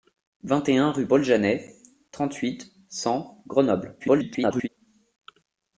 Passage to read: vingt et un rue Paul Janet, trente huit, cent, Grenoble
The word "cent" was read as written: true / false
true